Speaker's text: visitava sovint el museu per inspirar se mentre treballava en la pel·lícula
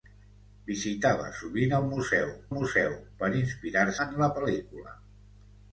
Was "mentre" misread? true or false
true